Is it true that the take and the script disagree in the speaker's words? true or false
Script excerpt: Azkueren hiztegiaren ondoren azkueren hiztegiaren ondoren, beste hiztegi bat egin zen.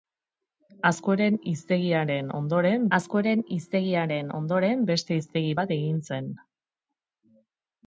false